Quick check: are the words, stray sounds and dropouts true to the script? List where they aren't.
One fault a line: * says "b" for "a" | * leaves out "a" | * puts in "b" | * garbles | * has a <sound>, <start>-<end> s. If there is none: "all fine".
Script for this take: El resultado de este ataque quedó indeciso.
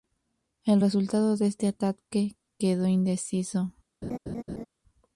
* has a laugh, 4.0-4.7 s